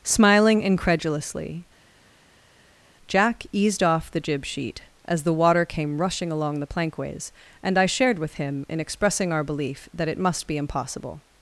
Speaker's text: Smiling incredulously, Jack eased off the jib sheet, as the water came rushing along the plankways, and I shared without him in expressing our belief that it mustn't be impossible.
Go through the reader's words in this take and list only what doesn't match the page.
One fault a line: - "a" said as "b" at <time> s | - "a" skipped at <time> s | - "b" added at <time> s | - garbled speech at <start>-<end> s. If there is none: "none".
- "without" said as "with" at 8.2 s
- "mustn't" said as "must" at 10.2 s